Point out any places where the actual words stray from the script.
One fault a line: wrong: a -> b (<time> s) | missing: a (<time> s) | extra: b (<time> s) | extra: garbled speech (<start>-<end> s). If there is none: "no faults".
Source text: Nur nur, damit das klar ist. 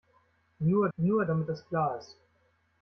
no faults